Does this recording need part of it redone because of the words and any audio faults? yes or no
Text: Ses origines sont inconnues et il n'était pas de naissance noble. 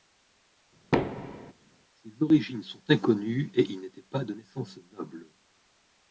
yes